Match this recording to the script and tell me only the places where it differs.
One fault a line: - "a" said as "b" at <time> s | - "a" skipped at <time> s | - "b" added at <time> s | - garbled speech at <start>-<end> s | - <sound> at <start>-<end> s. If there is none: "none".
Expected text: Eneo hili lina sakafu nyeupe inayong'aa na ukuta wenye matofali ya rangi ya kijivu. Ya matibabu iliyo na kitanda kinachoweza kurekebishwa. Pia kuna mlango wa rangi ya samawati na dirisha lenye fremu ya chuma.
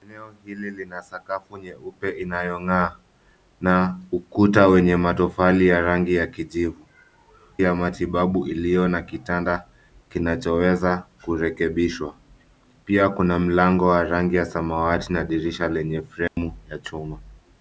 - dropout at 16.3-16.4 s